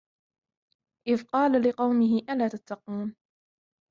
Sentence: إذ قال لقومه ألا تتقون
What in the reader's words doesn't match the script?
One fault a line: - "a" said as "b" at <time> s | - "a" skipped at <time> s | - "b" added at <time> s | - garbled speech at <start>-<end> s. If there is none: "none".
none